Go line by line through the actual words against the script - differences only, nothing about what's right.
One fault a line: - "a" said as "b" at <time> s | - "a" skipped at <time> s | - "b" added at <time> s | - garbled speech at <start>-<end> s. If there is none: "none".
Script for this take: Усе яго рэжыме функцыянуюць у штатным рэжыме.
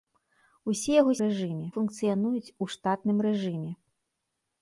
none